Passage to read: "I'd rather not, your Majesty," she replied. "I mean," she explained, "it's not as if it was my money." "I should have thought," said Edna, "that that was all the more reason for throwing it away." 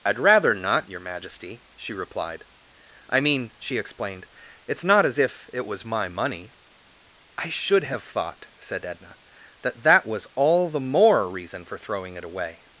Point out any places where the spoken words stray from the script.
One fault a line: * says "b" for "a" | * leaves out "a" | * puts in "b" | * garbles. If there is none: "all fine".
all fine